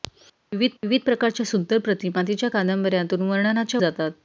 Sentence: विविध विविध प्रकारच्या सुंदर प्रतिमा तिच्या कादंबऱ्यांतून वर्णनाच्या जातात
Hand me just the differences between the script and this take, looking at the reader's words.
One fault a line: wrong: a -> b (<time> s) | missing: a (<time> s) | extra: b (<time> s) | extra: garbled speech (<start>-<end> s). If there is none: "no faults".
no faults